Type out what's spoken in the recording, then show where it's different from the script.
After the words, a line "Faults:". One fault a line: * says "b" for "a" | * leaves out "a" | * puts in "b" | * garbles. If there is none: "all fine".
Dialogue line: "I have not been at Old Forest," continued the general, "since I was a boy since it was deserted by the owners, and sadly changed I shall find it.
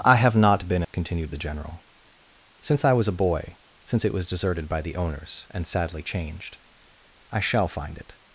"I have not been," continued the general, "since I was a boy since it was deserted by the owners, and sadly changed I shall find it.
Faults:
* leaves out "at Old Forest"